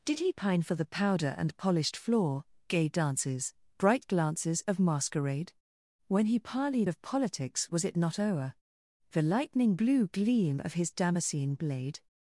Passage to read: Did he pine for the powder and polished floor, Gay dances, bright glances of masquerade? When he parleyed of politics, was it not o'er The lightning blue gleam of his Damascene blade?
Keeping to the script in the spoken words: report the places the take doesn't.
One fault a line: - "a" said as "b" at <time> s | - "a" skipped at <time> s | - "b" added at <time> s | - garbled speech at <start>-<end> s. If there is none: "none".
none